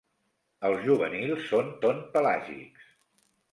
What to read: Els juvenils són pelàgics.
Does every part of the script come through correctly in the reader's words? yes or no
no